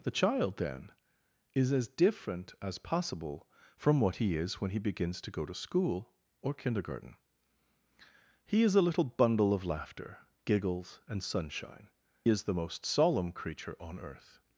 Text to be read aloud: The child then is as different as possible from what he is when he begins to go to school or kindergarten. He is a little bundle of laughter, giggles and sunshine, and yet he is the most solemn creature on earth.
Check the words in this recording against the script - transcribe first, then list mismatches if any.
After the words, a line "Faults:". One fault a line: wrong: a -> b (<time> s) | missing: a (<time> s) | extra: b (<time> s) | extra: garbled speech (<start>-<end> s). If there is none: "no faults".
The child then is as different as possible from what he is when he begins to go to school or kindergarten. He is a little bundle of laughter, giggles and sunshine, is the most solemn creature on earth.
Faults:
missing: and yet he (11.9 s)